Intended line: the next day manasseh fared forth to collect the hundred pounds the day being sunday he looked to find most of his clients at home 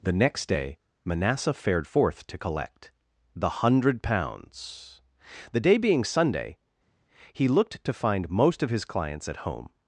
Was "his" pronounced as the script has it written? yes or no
yes